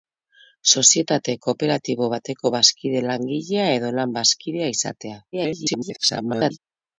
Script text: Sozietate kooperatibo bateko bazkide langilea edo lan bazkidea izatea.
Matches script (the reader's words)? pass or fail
fail